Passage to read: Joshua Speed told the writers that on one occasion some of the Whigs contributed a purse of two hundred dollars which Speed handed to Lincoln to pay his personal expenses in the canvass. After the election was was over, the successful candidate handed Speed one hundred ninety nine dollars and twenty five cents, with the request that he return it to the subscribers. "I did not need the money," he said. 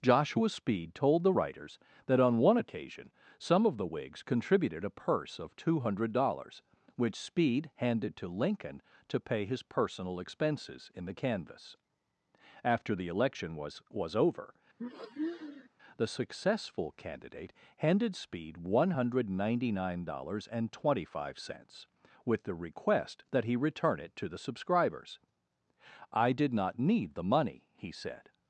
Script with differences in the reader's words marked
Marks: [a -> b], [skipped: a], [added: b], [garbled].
Joshua Speed told the writers that on one occasion some of the Whigs contributed a purse of two hundred dollars which Speed handed to Lincoln to pay his personal expenses in the canvass. After the election was was over, the successful candidate handed Speed one hundred ninety nine dollars and twenty five cents, with the request that he return it to the subscribers. "I did not need the money," he said.